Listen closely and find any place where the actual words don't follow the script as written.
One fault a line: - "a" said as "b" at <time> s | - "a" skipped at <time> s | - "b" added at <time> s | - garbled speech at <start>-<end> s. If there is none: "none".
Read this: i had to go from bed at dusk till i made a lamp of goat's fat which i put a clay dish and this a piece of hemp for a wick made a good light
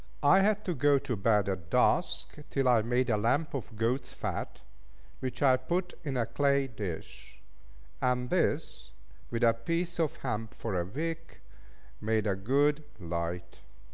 - "from" said as "to" at 1.0 s
- "in" added at 6.0 s
- "with" added at 9.3 s